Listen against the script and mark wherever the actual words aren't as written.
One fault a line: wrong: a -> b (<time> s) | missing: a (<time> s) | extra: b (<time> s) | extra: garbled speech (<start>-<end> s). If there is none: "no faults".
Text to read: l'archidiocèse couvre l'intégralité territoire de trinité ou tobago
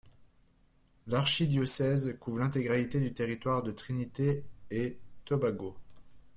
extra: du (3.0 s)
wrong: ou -> et (4.7 s)